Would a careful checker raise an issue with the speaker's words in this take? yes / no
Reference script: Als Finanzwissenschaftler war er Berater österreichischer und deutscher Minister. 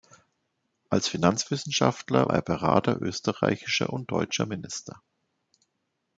yes